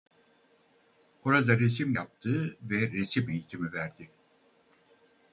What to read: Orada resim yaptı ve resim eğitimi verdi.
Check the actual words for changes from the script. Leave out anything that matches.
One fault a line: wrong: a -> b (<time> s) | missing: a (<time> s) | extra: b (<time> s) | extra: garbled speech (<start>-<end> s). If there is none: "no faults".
no faults